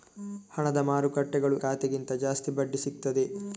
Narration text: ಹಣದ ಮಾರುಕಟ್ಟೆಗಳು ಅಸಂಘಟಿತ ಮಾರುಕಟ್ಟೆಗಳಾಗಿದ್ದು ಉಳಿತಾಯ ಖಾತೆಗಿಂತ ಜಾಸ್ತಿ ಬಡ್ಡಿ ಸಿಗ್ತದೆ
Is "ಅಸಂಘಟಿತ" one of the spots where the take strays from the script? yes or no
yes